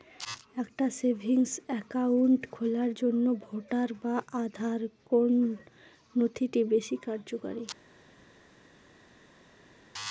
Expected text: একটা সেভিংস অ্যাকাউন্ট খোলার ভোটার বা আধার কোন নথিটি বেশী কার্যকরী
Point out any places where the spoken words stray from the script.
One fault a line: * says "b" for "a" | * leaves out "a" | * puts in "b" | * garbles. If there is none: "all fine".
* puts in "জন্য"